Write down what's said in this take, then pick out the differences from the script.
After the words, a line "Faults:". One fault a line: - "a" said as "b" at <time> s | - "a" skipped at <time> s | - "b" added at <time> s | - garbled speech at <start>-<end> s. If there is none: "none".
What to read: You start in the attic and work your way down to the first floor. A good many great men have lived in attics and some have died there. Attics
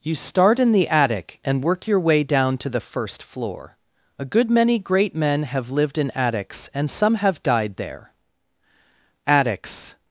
You start in the attic and work your way down to the first floor. A good many great men have lived in attics and some have died there. Attics
Faults:
none